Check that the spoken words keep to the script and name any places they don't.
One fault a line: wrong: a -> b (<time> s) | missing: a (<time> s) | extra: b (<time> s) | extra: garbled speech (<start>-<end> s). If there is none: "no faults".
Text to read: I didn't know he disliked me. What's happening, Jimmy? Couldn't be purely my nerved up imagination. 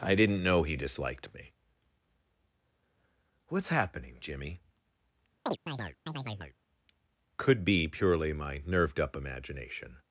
wrong: Couldn't -> Could (7.4 s)